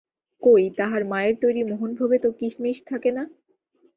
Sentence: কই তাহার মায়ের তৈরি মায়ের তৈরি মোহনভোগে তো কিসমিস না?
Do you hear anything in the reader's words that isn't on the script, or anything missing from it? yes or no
yes